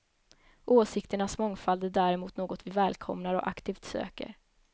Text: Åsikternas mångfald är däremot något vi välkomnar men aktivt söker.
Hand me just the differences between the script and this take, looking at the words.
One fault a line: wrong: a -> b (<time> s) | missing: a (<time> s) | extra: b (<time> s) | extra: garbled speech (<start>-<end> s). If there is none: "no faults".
wrong: men -> och (3.4 s)